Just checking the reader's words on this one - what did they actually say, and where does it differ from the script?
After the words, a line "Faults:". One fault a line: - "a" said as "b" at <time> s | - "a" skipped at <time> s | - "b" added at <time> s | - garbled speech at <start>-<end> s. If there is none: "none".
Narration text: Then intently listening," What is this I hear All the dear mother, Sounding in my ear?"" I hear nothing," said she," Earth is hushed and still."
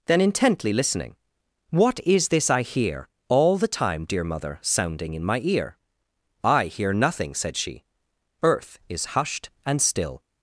Then intently listening," What is this I hear All the time, dear mother, Sounding in my ear?"" I hear nothing," said she," Earth is hushed and still."
Faults:
- "time" added at 3.7 s